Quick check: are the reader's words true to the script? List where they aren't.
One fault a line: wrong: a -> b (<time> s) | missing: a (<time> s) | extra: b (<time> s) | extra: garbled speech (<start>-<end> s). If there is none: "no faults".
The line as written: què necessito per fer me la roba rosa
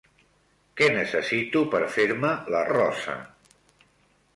missing: roba (2.6 s)